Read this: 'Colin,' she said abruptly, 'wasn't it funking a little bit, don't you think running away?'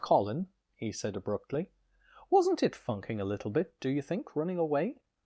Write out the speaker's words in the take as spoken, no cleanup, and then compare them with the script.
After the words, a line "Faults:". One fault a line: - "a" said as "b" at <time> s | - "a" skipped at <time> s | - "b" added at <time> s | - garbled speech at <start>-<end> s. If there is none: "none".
'Colin,' he said abruptly, 'wasn't it funking a little bit, do you think running away?'
Faults:
- "she" said as "he" at 0.7 s
- "don't" said as "do" at 3.8 s